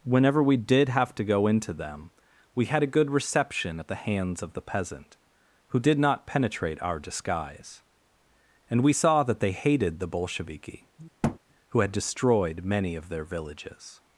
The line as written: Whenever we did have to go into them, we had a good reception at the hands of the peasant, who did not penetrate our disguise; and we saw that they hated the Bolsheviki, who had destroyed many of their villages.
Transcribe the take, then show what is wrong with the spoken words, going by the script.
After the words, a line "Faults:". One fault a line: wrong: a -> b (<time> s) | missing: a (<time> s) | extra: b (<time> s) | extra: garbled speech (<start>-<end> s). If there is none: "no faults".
Whenever we did have to go into them, we had a good reception at the hands of the peasant, who did not penetrate our disguise; and we saw that they hated the Bolsheviki, who had destroyed many of their villages.
Faults:
no faults